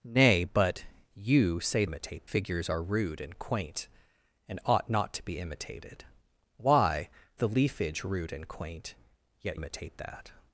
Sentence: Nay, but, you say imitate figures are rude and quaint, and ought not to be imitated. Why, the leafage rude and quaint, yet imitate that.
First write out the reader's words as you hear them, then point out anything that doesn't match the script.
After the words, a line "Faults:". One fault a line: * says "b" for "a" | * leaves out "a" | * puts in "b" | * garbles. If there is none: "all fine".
Nay, but, you say imitate figures are rude and quaint, and ought not to be imitated. Why, the leafage rude and quaint, yet imitate that.
Faults:
all fine